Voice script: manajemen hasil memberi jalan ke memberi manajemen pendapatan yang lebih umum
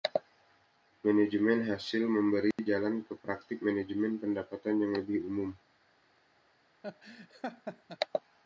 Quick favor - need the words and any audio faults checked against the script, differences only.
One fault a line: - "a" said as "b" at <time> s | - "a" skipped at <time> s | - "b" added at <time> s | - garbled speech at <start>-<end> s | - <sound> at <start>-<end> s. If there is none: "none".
- dropout at 2.5-2.6 s
- "memberi" said as "praktik" at 3.2 s
- laugh at 6.8-8.0 s